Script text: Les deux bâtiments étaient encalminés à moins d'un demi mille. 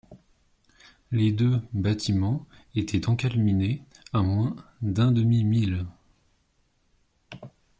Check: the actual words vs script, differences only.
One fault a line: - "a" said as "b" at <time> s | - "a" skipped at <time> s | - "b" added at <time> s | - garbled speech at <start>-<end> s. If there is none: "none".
none